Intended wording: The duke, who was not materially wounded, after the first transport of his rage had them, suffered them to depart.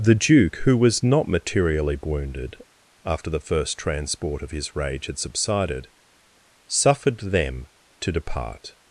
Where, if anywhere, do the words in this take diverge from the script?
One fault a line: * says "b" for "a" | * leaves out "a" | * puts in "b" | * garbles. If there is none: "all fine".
* says "subsided" for "them"